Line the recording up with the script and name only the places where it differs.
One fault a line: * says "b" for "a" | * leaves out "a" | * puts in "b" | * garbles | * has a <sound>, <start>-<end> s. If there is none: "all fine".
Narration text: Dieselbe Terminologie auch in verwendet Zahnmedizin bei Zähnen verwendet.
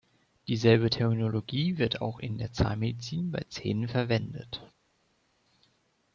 * puts in "wird"
* says "der" for "verwendet"